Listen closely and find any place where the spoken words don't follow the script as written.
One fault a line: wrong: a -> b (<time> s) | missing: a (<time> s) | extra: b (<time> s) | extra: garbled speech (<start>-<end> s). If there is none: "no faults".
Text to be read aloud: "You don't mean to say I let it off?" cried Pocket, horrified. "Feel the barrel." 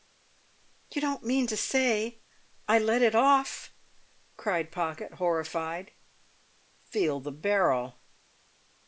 no faults